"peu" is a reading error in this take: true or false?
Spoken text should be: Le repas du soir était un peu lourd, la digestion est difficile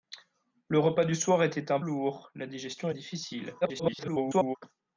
true